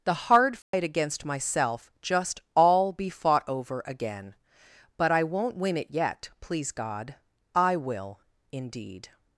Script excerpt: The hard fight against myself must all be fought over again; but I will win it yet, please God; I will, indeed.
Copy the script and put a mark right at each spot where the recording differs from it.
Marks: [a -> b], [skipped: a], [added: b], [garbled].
The hard fight against myself [must -> just] all be fought over again; but I [will -> won't] win it yet, please God; I will, indeed.